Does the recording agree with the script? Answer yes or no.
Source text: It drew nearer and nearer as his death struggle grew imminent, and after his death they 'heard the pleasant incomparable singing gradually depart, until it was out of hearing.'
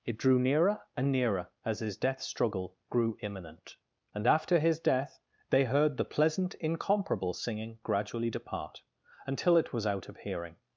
yes